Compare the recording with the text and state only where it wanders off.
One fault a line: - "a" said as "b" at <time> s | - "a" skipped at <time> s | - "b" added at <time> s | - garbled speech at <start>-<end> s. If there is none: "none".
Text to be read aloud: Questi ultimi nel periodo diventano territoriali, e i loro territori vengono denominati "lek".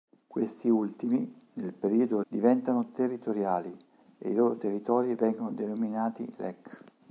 none